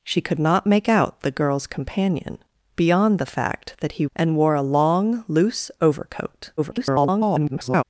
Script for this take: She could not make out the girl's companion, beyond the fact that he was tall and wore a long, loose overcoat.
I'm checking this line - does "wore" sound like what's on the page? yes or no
yes